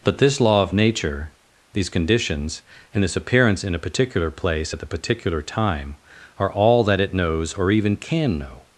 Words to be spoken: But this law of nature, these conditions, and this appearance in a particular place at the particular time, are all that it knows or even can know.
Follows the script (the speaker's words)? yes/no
yes